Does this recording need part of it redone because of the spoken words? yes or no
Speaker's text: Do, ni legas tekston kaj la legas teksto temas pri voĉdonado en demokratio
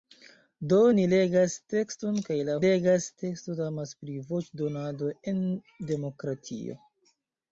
no